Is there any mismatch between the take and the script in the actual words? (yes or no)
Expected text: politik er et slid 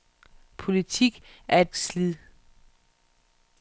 no